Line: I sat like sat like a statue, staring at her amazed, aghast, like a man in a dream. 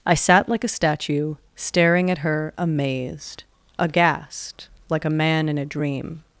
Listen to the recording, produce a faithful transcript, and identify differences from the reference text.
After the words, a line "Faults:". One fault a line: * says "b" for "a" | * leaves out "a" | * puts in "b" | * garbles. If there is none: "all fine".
I sat like a statue, staring at her amazed, aghast, like a man in a dream.
Faults:
* leaves out "sat like"